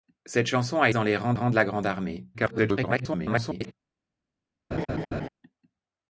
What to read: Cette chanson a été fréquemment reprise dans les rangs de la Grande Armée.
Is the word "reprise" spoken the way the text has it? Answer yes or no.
no